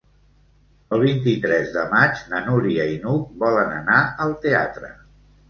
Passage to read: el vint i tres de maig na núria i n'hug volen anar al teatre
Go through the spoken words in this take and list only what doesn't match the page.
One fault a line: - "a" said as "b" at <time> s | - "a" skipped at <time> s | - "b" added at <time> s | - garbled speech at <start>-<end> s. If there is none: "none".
none